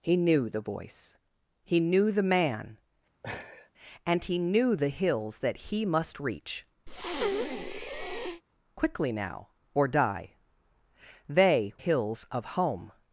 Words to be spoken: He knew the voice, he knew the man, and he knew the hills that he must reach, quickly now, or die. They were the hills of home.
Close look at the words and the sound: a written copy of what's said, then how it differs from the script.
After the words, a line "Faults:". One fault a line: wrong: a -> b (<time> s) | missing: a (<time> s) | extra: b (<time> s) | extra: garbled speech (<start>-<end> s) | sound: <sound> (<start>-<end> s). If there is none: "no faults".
He knew the voice, he knew the man, and he knew the hills that he must reach, quickly now, or die. They hills of home.
Faults:
sound: laugh (3.2-3.7 s)
sound: breath (6.9-8.4 s)
missing: were the (11.7 s)